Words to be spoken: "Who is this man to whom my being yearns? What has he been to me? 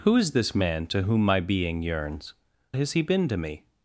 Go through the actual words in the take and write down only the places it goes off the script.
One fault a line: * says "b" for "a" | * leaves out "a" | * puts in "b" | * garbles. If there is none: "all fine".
* leaves out "What"